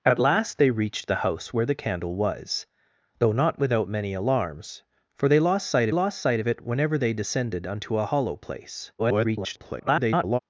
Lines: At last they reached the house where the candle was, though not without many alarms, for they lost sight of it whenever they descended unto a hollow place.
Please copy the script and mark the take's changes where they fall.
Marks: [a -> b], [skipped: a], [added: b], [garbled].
At last they reached the house where the candle was, though not without many alarms, for they lost sight [added: lost sight] of it whenever they descended unto a hollow place. [garbled]